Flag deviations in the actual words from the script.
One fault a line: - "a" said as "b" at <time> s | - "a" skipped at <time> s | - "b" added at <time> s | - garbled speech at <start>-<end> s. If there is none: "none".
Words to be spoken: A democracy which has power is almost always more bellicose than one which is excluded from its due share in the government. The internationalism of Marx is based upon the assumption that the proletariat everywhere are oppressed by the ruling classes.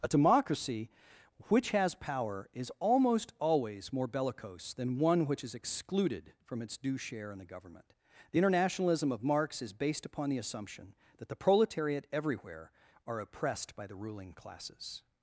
none